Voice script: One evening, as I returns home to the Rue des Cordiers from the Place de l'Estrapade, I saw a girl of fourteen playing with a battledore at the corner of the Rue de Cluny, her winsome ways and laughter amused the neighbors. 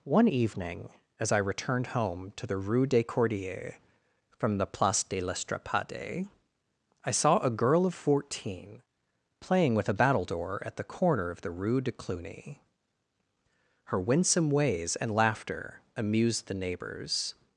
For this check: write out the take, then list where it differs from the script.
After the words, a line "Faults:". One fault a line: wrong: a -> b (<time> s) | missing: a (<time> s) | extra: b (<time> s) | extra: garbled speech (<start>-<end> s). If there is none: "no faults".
One evening, as I returned home to the Rue des Cordiers from the Place de l'Estrapade, I saw a girl of fourteen playing with a battledore at the corner of the Rue de Cluny, her winsome ways and laughter amused the neighbors.
Faults:
wrong: returns -> returned (1.4 s)